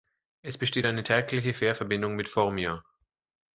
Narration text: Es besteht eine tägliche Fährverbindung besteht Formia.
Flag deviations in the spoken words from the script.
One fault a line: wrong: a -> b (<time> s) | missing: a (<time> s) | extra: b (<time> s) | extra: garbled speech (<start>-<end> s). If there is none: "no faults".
wrong: besteht -> mit (2.2 s)